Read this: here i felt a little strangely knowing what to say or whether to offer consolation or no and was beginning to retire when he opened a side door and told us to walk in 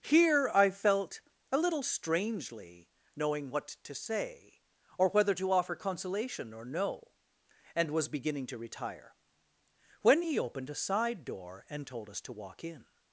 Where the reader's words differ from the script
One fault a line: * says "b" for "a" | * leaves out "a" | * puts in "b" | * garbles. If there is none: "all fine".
all fine